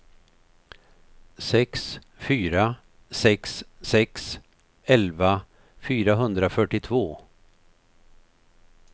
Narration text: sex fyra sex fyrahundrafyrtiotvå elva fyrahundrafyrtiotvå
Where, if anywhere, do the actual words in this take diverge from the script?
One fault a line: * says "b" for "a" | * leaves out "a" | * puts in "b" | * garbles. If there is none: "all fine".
* says "sex" for "fyrahundrafyrtiotvå"